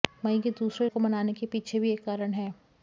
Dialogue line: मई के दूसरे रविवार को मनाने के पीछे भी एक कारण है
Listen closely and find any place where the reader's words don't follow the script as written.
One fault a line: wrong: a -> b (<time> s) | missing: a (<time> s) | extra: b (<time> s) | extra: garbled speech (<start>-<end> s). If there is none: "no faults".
missing: रविवार (0.9 s)